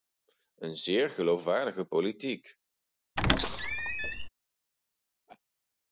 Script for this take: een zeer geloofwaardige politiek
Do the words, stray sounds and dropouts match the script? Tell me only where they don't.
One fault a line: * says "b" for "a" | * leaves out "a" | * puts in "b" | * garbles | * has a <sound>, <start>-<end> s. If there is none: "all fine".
* has a squeak, 3.2-4.3 s
* has a laugh, 5.3-5.4 s